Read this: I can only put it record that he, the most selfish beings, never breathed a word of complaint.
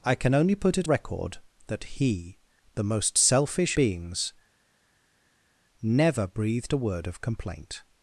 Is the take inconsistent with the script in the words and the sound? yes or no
no